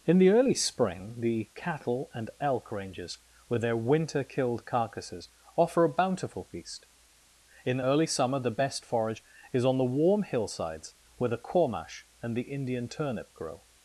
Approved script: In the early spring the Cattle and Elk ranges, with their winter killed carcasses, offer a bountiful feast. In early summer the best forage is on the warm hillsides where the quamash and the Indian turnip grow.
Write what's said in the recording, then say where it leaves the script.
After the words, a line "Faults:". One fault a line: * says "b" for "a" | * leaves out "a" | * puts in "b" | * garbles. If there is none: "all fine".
In the early spring the Cattle and Elk ranges, with their winter killed carcasses, offer a bountiful feast. In early summer the best forage is on the warm hillsides where the quamash and the Indian turnip grow.
Faults:
all fine